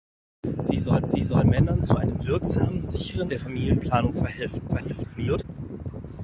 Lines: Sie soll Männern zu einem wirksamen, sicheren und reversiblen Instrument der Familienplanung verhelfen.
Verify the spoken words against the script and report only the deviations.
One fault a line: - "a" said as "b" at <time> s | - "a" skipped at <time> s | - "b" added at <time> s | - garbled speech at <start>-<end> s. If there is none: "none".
- "sie soll" added at 1.1 s
- "und reversiblen Instrument" skipped at 3.3 s
- garbled speech at 4.7-5.4 s